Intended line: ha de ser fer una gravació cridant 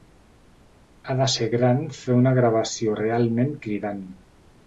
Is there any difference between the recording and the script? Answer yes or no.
yes